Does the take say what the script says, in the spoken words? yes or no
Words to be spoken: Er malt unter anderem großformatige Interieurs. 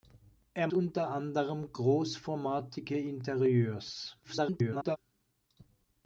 no